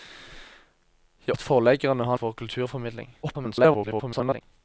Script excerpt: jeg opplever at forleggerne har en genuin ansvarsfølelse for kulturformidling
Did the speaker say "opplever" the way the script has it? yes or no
no